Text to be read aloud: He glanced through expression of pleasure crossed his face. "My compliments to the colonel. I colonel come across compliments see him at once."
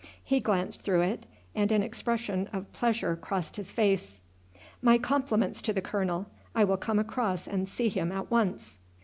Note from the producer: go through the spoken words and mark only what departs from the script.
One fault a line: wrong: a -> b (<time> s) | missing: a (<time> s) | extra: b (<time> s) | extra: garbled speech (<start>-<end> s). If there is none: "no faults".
extra: it and an (1.0 s)
wrong: colonel -> will (6.6 s)
wrong: compliments -> and (7.5 s)